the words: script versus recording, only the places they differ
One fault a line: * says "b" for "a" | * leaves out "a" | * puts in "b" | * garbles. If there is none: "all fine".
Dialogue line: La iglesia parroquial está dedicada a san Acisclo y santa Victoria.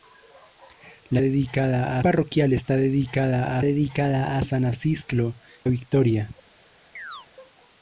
* says "dedicada" for "iglesia"
* puts in "dedicada"
* leaves out "y santa"